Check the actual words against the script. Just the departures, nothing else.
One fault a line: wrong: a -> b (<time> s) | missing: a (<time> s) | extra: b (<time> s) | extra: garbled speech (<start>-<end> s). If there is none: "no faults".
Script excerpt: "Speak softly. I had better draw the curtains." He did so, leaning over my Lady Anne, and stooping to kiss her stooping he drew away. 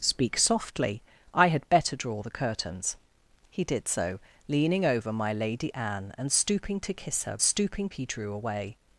no faults